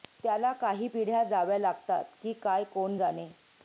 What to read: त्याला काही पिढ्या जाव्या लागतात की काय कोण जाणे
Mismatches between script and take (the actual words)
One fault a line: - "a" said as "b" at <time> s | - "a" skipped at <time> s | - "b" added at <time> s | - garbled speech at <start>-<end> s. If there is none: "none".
none